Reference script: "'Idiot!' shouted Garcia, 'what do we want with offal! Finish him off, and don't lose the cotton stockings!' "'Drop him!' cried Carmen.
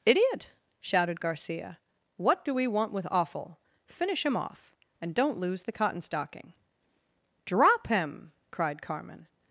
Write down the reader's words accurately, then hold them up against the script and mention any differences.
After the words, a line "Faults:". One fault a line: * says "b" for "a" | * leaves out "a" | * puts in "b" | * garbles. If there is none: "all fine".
"'Idiot!' shouted Garcia, 'what do we want with offal! Finish him off, and don't lose the cotton stocking!' "'Drop him!' cried Carmen.
Faults:
* says "stocking" for "stockings"